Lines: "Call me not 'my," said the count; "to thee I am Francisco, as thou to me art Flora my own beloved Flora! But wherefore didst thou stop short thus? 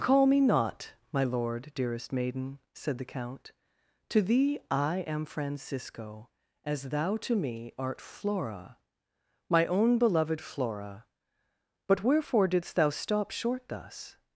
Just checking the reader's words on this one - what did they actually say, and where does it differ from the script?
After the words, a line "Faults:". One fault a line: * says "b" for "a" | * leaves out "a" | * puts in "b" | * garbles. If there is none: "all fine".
"Call me not 'my lord,' dearest maiden," said the count; "to thee I am Francisco, as thou to me art Flora my own beloved Flora! But wherefore didst thou stop short thus?
Faults:
* puts in "lord dearest maiden"